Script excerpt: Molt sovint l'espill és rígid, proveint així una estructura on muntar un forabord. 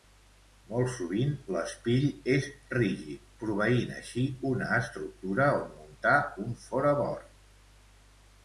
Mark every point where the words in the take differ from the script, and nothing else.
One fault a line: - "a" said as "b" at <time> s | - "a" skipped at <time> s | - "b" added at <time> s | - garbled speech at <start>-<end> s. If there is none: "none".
none